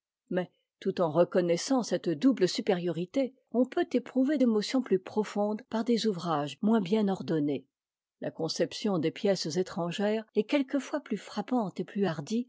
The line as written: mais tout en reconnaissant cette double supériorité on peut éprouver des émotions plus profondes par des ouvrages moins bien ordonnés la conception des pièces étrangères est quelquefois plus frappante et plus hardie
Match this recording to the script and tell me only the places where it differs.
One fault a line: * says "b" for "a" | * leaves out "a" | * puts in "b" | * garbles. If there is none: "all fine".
* leaves out "des"